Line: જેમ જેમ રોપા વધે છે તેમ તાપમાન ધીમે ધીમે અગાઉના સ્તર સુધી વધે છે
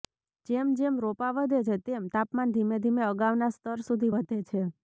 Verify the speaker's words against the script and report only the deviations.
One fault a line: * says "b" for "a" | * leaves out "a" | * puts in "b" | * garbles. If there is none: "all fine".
all fine